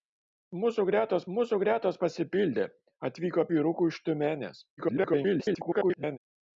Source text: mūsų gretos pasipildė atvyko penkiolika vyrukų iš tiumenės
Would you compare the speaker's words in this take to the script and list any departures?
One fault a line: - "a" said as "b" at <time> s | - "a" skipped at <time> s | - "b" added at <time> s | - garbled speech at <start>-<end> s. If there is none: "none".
- "mūsų gretos" added at 1.4 s
- "penkiolika" skipped at 3.5 s
- garbled speech at 4.8-6.2 s